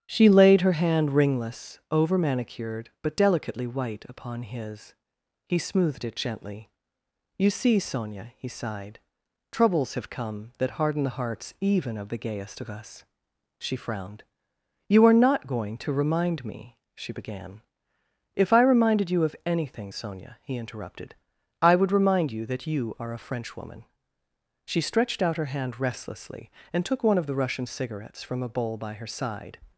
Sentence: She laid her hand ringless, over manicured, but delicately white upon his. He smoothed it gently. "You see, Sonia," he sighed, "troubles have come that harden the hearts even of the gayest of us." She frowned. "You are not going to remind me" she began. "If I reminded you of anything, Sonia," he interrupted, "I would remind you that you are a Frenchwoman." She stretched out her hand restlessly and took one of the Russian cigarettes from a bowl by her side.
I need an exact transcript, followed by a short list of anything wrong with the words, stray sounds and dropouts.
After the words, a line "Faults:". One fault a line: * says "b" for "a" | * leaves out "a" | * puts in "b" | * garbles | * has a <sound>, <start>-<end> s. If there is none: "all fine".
She laid her hand ringless, over manicured, but delicately white upon his. He smoothed it gently. "You see, Sonia," he sighed, "troubles have come that harden the hearts even of the gayest of us." She frowned. "You are not going to remind me" she began. "If I reminded you of anything, Sonia," he interrupted, "I would remind you that you are a Frenchwoman." She stretched out her hand restlessly and took one of the Russian cigarettes from a bowl by her side.
Faults:
all fine